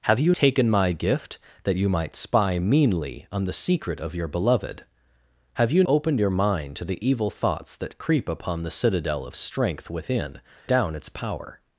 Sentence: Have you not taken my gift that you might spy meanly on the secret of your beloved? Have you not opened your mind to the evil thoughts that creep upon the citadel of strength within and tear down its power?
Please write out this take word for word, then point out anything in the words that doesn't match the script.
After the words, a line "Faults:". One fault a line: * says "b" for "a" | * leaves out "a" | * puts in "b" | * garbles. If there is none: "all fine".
Have you taken my gift that you might spy meanly on the secret of your beloved? Have you opened your mind to the evil thoughts that creep upon the citadel of strength within down its power?
Faults:
* leaves out "not"
* leaves out "not"
* leaves out "and tear"